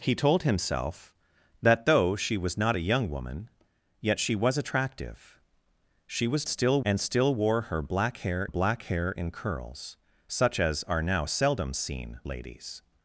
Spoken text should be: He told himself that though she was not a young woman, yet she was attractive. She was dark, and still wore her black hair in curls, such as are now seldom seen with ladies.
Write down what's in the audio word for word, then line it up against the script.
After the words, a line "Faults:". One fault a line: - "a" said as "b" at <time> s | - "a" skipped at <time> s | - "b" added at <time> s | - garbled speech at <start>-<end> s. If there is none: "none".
He told himself that though she was not a young woman, yet she was attractive. She was still, and still wore her black hair black hair in curls, such as are now seldom seen ladies.
Faults:
- "dark" said as "still" at 6.4 s
- "black hair" added at 8.5 s
- "with" skipped at 12.2 s